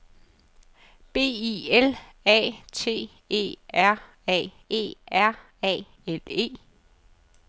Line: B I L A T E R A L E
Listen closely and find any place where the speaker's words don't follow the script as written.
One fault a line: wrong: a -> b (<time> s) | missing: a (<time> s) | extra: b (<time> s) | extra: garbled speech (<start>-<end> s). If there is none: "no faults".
extra: E R A (4.7 s)